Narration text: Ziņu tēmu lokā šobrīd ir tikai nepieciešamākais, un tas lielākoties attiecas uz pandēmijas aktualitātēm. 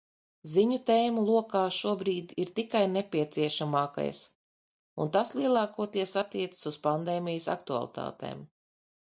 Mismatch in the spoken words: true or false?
false